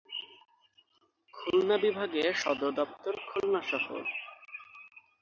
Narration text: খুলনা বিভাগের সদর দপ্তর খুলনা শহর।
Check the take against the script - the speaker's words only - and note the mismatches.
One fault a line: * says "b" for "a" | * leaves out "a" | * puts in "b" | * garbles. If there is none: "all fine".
all fine